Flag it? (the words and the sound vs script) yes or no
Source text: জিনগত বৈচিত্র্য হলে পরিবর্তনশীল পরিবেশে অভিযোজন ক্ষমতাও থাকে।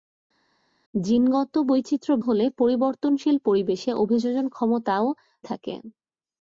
no